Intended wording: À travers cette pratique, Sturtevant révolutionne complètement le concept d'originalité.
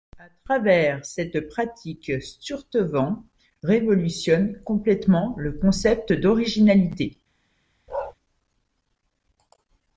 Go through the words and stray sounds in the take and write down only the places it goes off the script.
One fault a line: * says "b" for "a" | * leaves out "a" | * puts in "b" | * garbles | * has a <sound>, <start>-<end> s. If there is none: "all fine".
* has a bark, 7.9-8.1 s